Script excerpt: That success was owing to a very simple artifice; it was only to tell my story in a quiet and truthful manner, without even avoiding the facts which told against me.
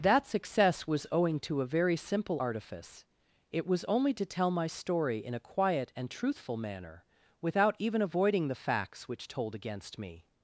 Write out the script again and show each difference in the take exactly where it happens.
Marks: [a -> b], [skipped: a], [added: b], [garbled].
That success was owing to a very simple artifice; it was only to tell my story in a quiet and truthful manner, without even avoiding the facts which told against me.